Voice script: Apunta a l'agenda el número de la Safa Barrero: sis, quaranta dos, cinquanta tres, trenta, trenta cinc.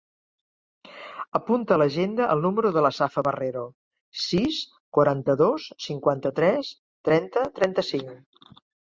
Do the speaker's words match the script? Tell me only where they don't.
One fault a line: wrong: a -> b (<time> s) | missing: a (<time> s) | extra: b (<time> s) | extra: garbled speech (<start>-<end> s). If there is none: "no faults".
no faults